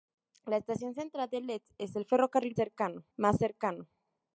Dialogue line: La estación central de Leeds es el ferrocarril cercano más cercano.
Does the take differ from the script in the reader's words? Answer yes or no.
no